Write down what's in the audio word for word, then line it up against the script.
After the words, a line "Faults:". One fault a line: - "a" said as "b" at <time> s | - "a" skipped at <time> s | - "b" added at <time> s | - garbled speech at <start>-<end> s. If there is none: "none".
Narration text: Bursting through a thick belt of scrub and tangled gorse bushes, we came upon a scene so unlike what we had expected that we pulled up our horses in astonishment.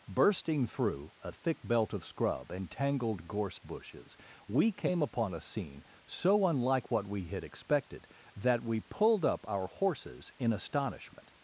Bursting through a thick belt of scrub and tangled gorse bushes, we came upon a scene so unlike what we had expected that we pulled up our horses in astonishment.
Faults:
none